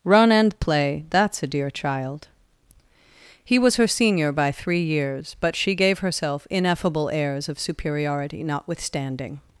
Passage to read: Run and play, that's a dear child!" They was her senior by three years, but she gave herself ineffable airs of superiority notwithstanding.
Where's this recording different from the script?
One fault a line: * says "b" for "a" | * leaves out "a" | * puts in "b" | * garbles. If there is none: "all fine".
* says "He" for "They"